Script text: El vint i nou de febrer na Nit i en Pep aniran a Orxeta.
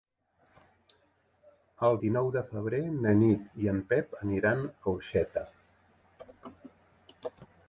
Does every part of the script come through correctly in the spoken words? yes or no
no